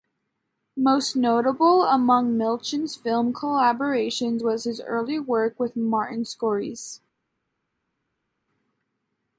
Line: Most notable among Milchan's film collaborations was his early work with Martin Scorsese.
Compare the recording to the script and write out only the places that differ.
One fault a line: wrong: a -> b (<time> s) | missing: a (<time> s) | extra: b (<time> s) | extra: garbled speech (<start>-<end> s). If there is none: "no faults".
no faults